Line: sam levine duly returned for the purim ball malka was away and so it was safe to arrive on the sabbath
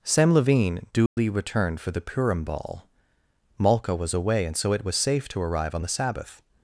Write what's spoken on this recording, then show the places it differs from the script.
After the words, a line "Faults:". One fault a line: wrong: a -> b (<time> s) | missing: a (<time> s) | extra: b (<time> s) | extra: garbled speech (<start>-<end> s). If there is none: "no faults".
sam levine duly returned for the purim ball malka was away and so it was safe to arrive on the sabbath
Faults:
no faults